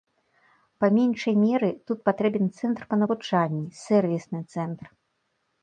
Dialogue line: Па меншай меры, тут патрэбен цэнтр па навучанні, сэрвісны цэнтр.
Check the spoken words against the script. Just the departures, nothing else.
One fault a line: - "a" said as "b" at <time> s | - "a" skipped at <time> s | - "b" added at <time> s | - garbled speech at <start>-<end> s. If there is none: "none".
none